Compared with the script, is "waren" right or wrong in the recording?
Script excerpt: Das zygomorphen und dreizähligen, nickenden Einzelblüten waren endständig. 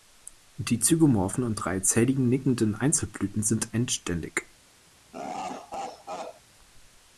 wrong